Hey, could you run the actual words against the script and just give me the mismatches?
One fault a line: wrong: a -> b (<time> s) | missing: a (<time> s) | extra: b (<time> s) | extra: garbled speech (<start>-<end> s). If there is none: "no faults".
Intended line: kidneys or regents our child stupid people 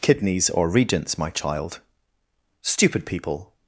wrong: our -> my (1.2 s)